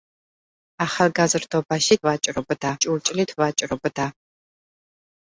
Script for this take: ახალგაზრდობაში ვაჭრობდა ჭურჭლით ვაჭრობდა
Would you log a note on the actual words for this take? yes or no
no